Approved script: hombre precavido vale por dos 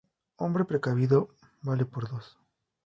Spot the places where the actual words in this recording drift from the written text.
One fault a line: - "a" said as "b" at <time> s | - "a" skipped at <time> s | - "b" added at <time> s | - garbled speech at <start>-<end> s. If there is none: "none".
none